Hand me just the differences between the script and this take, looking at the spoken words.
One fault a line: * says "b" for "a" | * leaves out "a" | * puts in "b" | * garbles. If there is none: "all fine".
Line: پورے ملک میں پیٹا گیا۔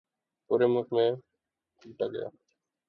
all fine